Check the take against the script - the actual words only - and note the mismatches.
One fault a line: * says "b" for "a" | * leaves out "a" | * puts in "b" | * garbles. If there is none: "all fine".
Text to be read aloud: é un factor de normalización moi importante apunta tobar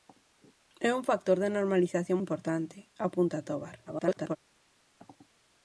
* leaves out "moi"
* garbles